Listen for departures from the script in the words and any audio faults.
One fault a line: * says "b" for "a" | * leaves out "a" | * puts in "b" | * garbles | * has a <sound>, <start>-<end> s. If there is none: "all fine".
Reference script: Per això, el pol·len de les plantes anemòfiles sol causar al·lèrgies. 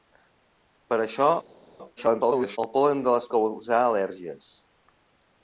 * garbles
* leaves out "plantes anemòfiles sol"